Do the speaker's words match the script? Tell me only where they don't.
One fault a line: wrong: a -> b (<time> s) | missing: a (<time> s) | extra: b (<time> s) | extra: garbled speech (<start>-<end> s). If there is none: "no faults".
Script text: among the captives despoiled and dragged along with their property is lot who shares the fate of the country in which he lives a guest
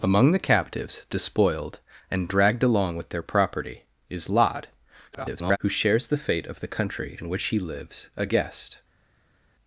extra: garbled speech (5.1-5.6 s)